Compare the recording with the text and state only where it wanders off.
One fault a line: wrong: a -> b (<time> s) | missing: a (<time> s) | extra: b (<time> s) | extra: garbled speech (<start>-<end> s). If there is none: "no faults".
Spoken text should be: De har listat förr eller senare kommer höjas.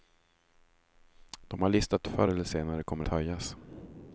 no faults